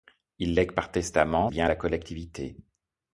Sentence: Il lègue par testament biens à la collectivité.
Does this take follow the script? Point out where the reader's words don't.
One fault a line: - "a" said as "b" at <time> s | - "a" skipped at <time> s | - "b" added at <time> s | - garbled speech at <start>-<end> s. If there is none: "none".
none